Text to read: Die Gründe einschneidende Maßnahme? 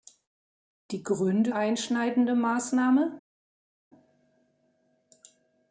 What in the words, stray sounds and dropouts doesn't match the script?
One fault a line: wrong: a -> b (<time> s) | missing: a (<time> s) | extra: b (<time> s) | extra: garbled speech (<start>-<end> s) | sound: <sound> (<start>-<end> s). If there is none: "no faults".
no faults